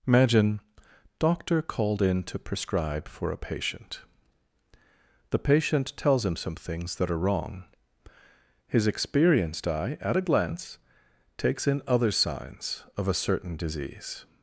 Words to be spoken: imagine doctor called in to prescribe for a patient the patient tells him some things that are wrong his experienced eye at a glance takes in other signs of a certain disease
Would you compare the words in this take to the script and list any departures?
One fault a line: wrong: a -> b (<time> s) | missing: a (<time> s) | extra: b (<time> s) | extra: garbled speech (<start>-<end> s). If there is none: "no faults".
no faults